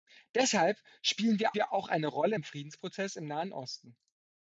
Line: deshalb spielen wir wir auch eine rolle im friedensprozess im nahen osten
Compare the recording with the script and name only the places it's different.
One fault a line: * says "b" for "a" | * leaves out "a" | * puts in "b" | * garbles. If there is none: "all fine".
all fine